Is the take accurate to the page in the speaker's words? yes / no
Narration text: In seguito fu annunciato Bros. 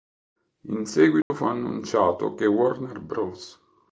no